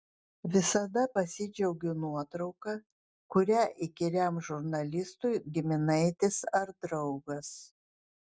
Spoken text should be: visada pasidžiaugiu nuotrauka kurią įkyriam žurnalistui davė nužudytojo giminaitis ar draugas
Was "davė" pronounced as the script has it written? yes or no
no